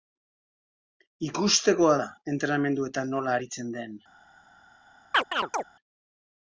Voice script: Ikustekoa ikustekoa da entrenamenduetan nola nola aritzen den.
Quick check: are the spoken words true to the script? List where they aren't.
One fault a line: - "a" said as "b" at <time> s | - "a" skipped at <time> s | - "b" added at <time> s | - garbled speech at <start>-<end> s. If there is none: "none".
- "ikustekoa" skipped at 1.9 s
- "nola" skipped at 3.3 s